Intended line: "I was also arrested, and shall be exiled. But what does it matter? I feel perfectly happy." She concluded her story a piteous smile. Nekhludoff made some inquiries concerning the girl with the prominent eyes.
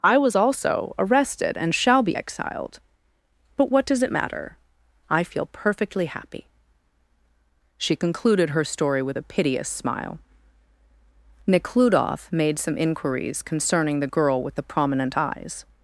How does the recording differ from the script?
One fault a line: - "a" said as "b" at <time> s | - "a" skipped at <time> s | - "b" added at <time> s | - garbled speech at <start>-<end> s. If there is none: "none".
- "with" added at 9.0 s